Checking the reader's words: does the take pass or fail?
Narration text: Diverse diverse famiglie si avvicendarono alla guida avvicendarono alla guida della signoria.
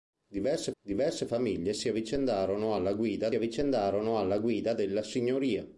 pass